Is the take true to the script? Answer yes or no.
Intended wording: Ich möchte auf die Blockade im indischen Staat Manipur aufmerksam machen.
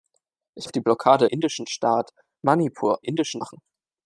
no